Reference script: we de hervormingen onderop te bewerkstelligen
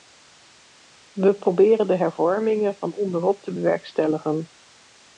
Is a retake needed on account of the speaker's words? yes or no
yes